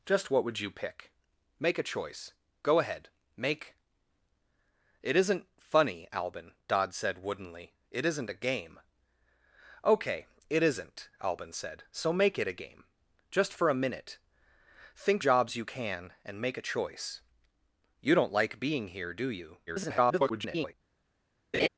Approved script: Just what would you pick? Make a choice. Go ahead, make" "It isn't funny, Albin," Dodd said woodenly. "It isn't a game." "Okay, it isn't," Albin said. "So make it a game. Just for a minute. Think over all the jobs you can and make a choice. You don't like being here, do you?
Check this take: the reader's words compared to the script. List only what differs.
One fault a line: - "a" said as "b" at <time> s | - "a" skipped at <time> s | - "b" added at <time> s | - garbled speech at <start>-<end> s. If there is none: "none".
- "over all the" skipped at 15.2 s
- garbled speech at 19.7-20.7 s